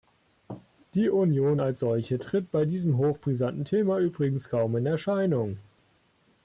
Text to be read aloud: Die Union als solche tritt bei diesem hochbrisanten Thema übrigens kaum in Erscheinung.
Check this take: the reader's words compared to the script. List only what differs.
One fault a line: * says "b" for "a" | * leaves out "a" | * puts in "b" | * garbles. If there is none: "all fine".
all fine